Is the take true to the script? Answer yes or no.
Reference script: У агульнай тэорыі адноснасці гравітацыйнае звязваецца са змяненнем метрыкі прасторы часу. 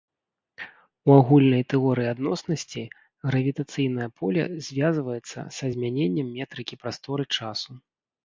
no